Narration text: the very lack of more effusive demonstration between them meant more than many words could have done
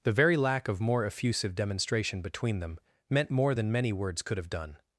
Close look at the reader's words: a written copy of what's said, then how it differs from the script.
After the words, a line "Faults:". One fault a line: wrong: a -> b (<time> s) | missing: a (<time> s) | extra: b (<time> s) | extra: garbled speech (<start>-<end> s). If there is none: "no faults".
the very lack of more effusive demonstration between them meant more than many words could have done
Faults:
no faults